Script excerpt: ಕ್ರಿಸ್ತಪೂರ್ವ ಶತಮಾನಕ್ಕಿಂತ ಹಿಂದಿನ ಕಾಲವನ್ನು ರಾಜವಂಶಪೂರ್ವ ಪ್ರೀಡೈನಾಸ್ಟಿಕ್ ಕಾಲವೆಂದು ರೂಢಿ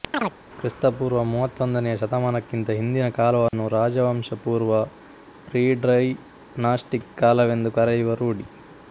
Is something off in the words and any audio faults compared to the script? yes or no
yes